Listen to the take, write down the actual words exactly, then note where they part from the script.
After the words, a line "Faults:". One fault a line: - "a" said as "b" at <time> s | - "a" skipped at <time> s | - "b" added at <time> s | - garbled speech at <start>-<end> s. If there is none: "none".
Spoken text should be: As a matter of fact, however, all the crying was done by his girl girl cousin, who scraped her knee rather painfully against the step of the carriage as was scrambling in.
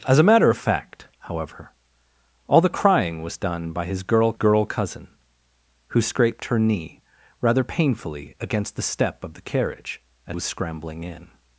As a matter of fact, however, all the crying was done by his girl girl cousin, who scraped her knee rather painfully against the step of the carriage as was scrambling in.
Faults:
none